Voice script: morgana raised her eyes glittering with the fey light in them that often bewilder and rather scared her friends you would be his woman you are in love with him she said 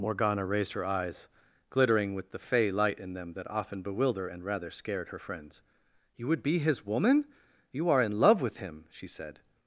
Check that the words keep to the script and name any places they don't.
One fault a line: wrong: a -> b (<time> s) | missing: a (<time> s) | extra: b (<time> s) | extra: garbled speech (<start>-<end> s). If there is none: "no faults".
no faults